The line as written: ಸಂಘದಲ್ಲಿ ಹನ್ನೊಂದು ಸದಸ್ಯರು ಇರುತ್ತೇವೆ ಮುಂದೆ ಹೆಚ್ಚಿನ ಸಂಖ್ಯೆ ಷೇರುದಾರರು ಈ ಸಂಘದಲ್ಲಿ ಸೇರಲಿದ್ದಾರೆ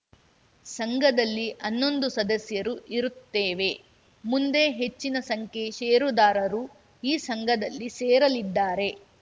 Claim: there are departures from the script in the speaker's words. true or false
false